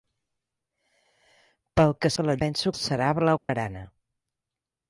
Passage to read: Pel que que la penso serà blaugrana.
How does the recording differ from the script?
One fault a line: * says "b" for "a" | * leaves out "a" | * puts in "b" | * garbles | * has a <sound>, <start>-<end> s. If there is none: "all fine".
* has a dropout, 3.4-3.5 s